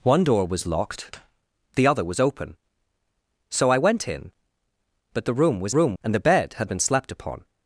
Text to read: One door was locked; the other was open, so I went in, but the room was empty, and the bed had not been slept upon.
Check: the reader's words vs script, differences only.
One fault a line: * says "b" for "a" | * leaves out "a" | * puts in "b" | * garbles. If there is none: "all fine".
* says "room" for "empty"
* leaves out "not"